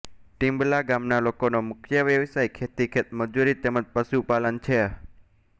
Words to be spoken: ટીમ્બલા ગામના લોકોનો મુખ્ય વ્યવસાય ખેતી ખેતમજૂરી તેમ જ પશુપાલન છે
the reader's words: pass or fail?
pass